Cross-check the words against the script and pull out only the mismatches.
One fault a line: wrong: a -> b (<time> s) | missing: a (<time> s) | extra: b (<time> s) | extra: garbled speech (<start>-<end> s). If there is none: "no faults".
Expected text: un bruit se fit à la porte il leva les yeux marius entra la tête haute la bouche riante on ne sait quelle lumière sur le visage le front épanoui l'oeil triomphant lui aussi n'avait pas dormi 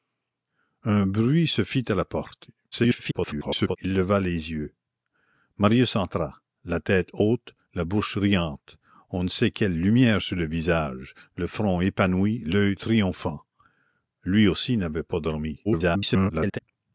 extra: garbled speech (2.7-3.8 s)
extra: garbled speech (15.6-16.6 s)